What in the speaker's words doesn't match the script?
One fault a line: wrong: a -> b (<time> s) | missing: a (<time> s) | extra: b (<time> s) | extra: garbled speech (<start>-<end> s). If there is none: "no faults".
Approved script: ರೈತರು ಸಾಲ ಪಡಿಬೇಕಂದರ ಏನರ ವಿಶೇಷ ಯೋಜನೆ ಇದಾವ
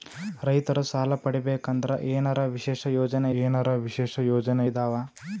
extra: ಏನರ ವಿಶೇಷ ಯೋಜನೆ (3.4 s)